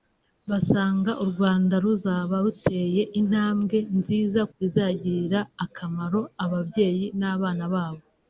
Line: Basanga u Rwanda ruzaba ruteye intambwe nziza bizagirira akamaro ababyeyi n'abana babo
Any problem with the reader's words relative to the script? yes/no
no